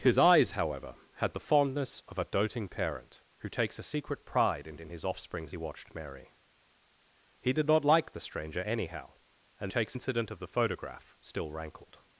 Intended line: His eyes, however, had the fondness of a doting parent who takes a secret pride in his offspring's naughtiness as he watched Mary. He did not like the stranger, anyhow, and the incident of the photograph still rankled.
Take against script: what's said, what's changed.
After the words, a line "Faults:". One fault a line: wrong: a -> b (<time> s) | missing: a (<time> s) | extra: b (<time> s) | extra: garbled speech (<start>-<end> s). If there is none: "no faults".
His eyes, however, had the fondness of a doting parent who takes a secret pride in in his offspring's he watched Mary. He did not like the stranger, anyhow, and takes incident of the photograph still rankled.
Faults:
extra: in (4.8 s)
missing: naughtiness as (5.5 s)
wrong: the -> takes (9.7 s)